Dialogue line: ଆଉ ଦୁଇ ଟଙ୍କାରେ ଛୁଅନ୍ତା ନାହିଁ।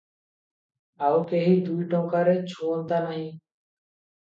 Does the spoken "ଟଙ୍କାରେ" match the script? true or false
true